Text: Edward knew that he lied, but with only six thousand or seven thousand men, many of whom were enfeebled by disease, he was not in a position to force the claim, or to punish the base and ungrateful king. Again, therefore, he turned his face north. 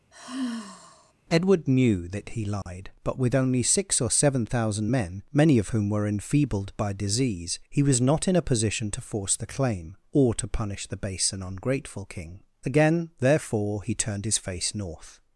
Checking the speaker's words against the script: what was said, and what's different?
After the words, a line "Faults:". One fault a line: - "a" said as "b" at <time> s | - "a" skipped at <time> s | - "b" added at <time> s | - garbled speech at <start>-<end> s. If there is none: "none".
Edward knew that he lied, but with only six or seven thousand men, many of whom were enfeebled by disease, he was not in a position to force the claim, or to punish the base and ungrateful king. Again, therefore, he turned his face north.
Faults:
- "thousand" skipped at 4.0 s